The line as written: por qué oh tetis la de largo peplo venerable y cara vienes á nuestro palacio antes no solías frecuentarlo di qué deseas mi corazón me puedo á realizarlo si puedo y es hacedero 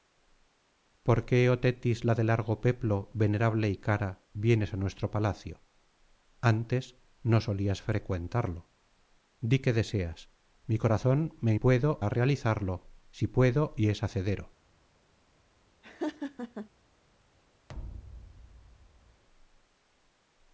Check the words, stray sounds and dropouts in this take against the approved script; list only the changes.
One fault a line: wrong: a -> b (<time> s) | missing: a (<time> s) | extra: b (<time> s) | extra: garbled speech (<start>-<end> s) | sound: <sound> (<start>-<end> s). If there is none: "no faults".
sound: laugh (15.8-16.7 s)
sound: thud (17.7-19.2 s)